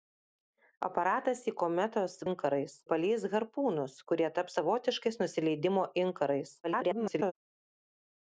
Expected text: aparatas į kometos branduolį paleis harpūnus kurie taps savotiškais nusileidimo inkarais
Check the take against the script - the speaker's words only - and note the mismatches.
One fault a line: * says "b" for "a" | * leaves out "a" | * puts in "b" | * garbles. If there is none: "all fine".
* says "inkarais" for "branduolį"
* garbles